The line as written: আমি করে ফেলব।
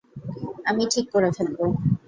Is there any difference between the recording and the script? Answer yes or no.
yes